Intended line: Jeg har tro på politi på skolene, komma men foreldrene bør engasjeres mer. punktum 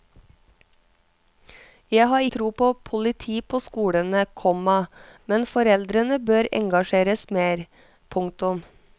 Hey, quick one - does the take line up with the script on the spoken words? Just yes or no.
yes